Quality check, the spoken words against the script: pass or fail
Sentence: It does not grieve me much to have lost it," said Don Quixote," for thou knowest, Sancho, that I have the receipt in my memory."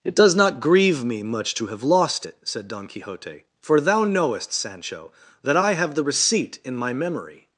pass